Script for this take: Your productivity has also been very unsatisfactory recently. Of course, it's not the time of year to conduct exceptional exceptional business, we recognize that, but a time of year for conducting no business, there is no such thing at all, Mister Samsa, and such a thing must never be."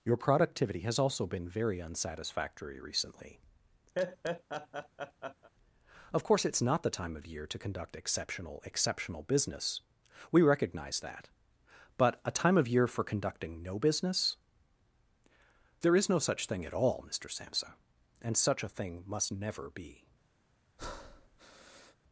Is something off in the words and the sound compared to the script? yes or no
yes